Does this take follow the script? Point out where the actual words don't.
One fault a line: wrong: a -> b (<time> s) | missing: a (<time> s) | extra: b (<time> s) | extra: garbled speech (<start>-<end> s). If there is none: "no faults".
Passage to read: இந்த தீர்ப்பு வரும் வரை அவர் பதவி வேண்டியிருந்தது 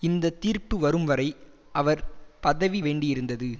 no faults